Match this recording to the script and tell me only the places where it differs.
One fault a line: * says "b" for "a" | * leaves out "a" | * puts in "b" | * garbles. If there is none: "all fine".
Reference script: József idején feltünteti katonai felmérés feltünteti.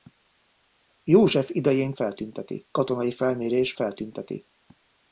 all fine